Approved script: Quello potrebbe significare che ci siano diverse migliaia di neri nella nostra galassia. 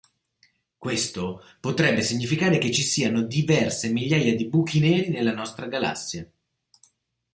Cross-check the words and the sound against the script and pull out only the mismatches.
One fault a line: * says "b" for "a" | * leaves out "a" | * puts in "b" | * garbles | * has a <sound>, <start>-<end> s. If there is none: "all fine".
* says "Questo" for "Quello"
* puts in "buchi"